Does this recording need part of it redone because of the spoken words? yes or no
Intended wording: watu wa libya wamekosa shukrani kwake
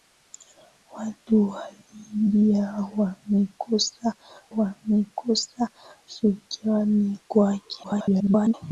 yes